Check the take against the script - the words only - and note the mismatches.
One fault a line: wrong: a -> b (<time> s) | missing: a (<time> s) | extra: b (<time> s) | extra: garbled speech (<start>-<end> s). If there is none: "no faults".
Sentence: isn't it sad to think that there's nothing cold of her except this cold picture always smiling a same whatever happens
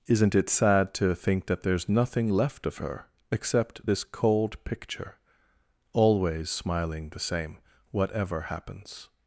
wrong: cold -> left (2.3 s)
wrong: a -> the (7.1 s)